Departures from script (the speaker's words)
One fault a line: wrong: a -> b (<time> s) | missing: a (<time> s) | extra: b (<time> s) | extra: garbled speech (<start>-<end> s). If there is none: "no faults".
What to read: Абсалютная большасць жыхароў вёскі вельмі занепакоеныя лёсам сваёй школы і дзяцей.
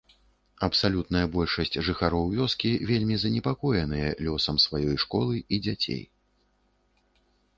no faults